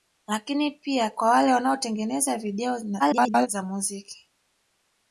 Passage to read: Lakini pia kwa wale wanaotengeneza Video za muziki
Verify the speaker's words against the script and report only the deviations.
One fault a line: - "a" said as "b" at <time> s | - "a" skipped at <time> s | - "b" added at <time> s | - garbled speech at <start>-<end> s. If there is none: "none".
- garbled speech at 3.0-3.5 s